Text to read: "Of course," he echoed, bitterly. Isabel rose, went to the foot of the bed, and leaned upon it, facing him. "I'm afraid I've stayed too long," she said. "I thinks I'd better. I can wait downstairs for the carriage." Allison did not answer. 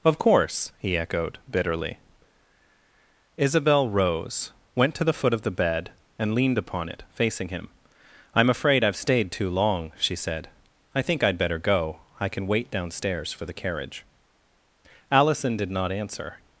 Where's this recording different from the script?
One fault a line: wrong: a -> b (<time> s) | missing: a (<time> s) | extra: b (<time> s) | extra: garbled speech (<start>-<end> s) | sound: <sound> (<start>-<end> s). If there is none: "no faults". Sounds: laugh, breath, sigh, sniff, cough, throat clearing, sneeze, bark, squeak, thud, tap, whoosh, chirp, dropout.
wrong: thinks -> think (11.0 s)
extra: go (11.6 s)